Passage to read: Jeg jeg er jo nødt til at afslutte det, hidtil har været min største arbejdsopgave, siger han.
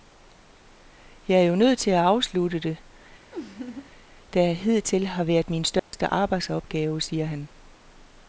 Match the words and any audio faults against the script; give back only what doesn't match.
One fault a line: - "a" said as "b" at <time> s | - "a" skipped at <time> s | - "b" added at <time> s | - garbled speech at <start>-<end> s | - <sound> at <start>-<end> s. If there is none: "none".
- "jeg" skipped at 1.4 s
- laugh at 3.3-3.9 s
- "der" added at 4.3 s
- dropout at 5.8-5.9 s